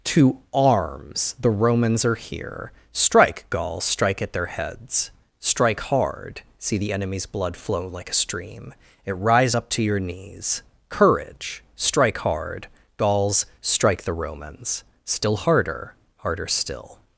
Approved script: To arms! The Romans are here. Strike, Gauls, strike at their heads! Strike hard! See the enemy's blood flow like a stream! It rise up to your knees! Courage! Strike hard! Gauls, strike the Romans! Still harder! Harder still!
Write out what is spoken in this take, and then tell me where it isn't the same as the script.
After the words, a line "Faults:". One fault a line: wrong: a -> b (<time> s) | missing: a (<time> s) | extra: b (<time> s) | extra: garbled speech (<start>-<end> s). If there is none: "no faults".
To arms! The Romans are here. Strike, Gauls, strike at their heads! Strike hard! See the enemy's blood flow like a stream! It rise up to your knees! Courage! Strike hard! Gauls, strike the Romans! Still harder! Harder still!
Faults:
no faults